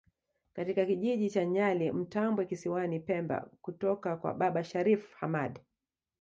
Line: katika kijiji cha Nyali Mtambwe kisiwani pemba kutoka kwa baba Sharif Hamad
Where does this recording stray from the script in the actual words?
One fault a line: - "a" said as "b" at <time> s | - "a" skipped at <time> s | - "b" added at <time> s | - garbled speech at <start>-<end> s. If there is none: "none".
none